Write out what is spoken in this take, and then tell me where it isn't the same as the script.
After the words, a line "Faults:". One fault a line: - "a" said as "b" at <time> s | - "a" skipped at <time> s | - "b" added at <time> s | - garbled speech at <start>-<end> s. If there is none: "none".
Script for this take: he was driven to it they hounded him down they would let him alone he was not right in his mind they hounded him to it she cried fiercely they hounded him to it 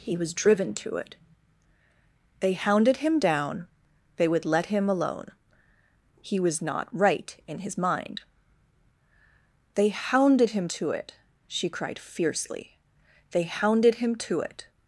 he was driven to it they hounded him down they would let him alone he was not right in his mind they hounded him to it she cried fiercely they hounded him to it
Faults:
none